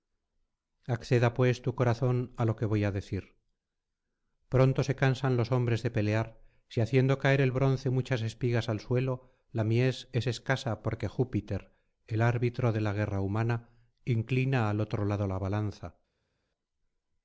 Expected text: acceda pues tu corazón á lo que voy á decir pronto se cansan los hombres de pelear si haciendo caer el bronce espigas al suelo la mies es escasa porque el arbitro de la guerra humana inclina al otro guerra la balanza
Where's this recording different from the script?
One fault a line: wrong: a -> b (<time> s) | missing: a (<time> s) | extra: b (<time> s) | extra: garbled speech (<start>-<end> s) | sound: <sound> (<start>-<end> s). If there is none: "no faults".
extra: muchas (8.0 s)
extra: júpiter (11.1 s)
wrong: guerra -> lado (15.0 s)